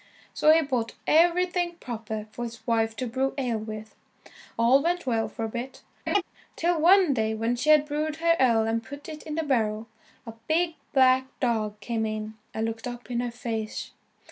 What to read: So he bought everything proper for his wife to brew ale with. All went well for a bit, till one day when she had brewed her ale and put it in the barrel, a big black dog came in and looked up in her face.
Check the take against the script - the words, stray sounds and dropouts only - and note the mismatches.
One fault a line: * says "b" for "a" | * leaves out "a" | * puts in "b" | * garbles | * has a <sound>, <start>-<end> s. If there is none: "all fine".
* has a laugh, 6.1-6.2 s